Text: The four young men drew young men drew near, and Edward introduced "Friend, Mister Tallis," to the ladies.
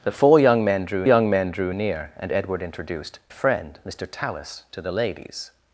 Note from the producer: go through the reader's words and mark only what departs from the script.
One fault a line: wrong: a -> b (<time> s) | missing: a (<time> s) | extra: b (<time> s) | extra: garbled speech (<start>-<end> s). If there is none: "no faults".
no faults